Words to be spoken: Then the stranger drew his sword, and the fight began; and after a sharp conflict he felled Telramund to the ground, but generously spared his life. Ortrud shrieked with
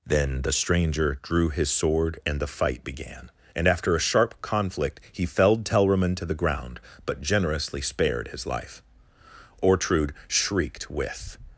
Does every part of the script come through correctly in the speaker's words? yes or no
yes